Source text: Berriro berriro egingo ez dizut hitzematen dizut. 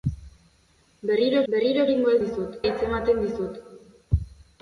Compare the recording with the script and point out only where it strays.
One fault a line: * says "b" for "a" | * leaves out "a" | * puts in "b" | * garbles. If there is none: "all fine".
all fine